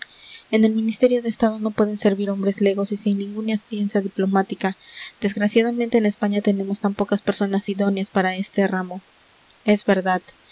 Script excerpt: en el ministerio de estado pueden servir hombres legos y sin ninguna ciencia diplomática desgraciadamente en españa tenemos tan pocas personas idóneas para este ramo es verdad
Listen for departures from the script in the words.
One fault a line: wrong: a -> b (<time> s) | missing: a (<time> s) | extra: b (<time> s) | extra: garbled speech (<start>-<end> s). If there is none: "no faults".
extra: no (1.6 s)